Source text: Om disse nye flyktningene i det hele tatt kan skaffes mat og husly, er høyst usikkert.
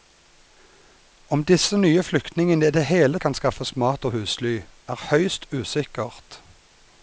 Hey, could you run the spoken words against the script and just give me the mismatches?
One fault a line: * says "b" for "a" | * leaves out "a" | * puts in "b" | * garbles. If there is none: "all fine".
* leaves out "tatt"